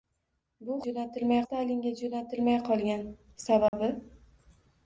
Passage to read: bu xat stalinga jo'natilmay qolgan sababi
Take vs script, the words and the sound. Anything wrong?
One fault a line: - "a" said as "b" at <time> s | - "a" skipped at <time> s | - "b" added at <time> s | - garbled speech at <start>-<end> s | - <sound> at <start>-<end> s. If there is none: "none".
- "xat" said as "jo'natilmay" at 0.8 s
- dropout at 3.7-3.7 s